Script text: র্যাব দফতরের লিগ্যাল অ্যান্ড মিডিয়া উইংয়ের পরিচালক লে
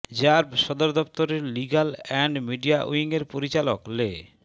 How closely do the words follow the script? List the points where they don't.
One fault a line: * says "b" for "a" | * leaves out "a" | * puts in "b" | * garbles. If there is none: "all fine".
* puts in "সদর"